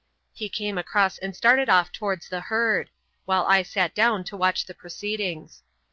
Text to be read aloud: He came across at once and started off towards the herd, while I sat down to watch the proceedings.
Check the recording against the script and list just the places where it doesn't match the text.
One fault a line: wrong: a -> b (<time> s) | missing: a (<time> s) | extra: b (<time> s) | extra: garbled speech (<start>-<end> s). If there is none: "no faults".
missing: at once (1.2 s)